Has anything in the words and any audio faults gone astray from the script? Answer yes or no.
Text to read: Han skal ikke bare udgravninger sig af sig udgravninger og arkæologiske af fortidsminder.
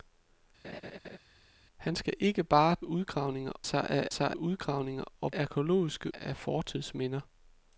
yes